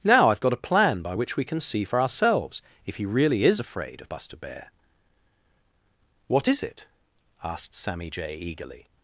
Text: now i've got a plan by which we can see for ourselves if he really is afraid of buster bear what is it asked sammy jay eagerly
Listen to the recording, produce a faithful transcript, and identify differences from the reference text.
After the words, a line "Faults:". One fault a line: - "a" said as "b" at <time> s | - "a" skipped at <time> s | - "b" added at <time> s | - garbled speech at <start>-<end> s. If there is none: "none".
now i've got a plan by which we can see for ourselves if he really is afraid of buster bear what is it asked sammy jay eagerly
Faults:
none